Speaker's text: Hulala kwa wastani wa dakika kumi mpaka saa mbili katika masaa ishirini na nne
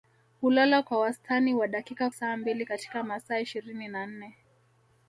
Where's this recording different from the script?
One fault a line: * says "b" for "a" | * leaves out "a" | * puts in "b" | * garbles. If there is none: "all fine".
* leaves out "kumi mpaka"